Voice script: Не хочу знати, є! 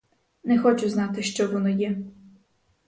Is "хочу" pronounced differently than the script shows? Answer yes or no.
no